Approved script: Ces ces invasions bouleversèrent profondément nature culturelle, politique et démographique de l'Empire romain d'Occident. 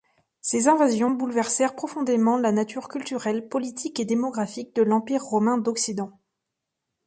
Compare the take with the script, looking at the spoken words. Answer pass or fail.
fail